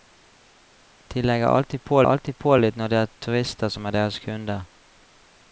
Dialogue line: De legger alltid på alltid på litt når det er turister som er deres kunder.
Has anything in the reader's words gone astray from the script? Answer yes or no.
no